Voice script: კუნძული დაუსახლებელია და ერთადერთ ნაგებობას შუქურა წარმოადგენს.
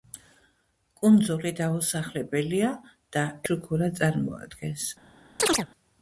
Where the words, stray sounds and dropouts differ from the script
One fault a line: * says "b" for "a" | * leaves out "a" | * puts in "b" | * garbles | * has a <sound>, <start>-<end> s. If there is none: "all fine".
* leaves out "ერთადერთ ნაგებობას"
* has a chirp, 5.4-5.7 s